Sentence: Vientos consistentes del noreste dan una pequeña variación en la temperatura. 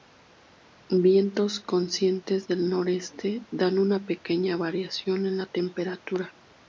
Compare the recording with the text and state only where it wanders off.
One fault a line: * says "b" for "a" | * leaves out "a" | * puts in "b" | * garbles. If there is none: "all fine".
all fine